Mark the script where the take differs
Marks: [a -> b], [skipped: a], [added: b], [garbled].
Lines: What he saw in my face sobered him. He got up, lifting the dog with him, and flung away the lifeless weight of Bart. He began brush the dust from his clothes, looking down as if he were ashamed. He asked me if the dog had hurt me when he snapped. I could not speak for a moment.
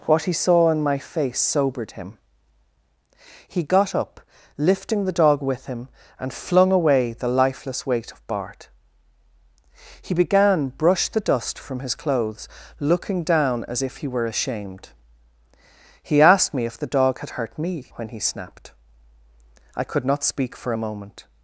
What he saw in my face sobered him. He got up, lifting the dog with him, and flung away the lifeless weight of Bart. He began brush the dust from his clothes, looking down as if he were ashamed. He asked me if the dog had hurt me when he snapped. I could not speak for a moment.